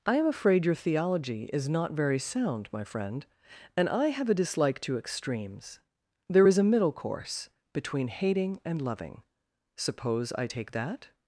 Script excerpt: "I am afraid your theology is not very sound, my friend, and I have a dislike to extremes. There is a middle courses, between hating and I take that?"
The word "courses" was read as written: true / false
false